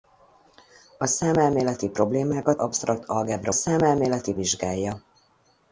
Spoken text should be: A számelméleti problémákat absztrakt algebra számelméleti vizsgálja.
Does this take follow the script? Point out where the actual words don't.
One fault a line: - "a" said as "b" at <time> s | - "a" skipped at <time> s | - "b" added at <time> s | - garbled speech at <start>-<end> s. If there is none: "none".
none